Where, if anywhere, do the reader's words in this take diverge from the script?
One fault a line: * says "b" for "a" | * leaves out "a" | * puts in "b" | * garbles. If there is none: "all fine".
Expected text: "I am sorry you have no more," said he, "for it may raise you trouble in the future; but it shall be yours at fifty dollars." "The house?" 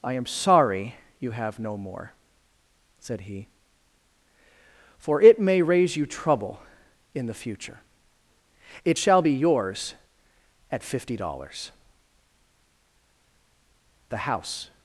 * leaves out "but"